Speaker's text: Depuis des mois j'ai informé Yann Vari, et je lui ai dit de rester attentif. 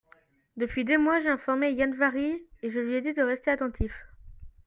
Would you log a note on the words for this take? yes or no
no